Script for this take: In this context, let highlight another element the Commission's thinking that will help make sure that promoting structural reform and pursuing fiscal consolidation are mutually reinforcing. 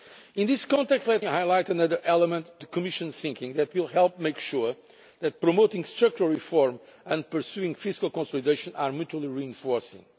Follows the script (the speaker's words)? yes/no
yes